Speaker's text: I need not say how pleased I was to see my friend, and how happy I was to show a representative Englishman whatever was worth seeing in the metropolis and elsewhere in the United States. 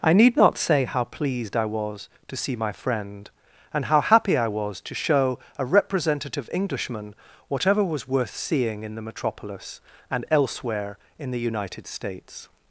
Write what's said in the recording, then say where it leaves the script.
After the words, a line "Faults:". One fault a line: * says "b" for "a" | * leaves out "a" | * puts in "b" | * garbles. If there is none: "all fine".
I need not say how pleased I was to see my friend, and how happy I was to show a representative Englishman whatever was worth seeing in the metropolis and elsewhere in the United States.
Faults:
all fine